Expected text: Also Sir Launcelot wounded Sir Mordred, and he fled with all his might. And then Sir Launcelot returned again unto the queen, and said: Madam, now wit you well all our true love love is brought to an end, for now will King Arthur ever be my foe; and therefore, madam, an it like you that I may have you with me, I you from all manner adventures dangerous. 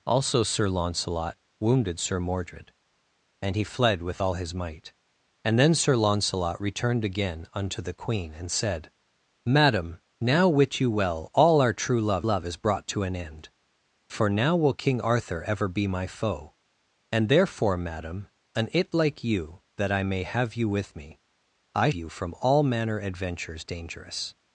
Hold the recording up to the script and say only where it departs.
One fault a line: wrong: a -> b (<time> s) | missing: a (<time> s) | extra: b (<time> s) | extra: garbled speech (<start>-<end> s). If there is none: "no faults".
no faults